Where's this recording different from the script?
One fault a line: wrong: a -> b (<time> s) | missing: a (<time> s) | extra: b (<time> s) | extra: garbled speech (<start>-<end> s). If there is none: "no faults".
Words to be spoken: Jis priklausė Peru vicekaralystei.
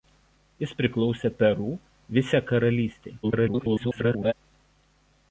extra: garbled speech (3.2-4.3 s)